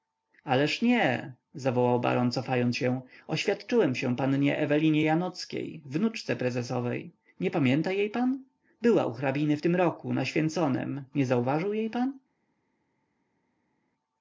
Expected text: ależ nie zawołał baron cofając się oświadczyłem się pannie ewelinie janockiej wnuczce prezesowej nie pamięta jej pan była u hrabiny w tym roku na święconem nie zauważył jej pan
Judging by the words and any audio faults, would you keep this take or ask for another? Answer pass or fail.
pass